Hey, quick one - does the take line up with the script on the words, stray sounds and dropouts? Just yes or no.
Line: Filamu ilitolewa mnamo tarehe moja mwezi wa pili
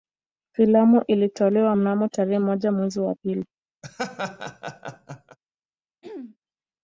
no